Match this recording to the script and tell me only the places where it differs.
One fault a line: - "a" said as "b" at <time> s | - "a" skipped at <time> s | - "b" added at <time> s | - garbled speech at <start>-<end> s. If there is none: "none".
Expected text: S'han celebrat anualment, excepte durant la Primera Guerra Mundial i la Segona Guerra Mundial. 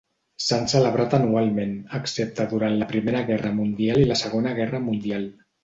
none